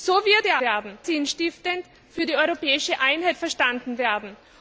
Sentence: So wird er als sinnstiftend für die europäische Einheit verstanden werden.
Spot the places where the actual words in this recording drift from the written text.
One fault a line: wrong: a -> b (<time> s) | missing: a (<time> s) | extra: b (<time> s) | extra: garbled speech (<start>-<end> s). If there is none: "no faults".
wrong: als -> werden (0.6 s)